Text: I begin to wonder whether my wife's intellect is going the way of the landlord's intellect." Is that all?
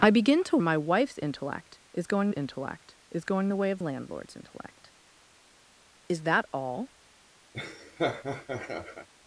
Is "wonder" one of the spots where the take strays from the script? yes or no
yes